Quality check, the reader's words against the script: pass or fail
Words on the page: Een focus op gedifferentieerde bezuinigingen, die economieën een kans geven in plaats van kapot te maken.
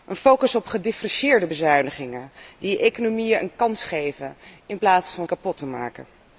pass